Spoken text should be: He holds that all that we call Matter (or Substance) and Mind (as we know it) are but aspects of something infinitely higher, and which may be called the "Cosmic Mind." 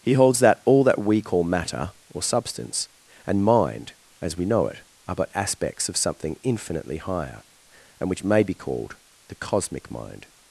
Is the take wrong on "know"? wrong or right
right